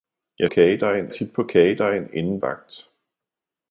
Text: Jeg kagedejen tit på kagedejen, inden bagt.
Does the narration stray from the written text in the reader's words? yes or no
no